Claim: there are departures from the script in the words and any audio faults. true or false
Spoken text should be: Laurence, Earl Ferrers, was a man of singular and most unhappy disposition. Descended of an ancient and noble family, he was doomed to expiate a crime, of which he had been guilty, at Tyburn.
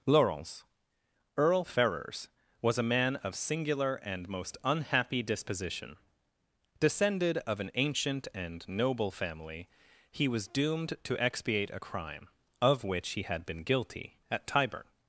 false